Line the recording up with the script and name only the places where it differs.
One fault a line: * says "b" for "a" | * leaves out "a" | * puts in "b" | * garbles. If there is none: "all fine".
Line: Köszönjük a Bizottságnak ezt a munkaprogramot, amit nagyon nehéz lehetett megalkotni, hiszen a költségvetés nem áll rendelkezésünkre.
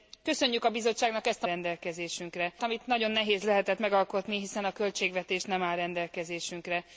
* says "rendelkezésünkre" for "munkaprogramot"